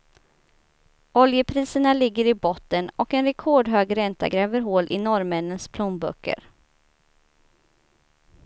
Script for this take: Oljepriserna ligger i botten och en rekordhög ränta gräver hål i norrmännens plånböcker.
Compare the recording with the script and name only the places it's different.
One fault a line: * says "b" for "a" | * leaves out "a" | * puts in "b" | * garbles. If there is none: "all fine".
all fine